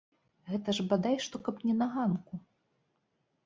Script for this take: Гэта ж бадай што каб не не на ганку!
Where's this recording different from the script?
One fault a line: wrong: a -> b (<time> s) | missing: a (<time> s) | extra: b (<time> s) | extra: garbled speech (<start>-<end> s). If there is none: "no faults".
missing: не (1.8 s)